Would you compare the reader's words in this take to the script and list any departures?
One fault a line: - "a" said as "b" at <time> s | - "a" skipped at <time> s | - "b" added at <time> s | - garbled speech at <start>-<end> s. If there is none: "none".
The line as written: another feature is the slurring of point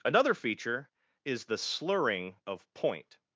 none